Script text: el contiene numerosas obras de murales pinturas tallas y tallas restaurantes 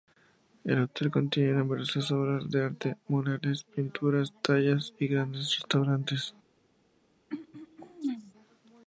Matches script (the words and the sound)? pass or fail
fail